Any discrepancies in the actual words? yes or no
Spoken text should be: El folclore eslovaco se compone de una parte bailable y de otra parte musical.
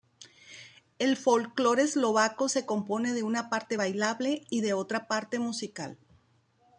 no